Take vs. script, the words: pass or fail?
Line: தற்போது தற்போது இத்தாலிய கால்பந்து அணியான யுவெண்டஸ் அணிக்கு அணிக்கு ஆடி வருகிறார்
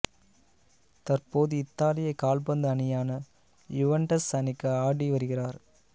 fail